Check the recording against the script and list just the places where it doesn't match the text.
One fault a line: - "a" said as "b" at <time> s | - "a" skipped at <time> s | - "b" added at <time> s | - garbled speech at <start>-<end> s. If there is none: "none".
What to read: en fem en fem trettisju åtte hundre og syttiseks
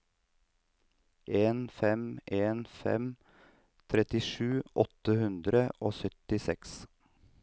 none